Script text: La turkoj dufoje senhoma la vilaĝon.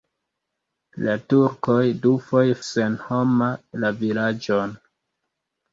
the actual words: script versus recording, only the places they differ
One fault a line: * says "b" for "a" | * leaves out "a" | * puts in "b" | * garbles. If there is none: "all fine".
all fine